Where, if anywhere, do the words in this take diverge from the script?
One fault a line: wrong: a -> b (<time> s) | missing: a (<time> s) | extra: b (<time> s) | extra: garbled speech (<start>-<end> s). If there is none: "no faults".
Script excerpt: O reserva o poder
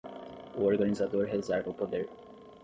extra: organizador (0.6 s)